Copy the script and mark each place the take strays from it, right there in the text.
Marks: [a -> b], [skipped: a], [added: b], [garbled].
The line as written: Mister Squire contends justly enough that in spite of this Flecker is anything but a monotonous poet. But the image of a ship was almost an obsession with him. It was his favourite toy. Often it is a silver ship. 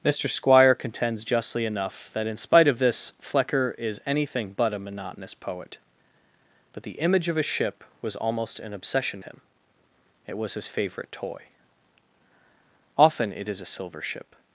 Mister Squire contends justly enough that in spite of this Flecker is anything but a monotonous poet. But the image of a ship was almost an obsession [skipped: with] him. It was his favourite toy. Often it is a silver ship.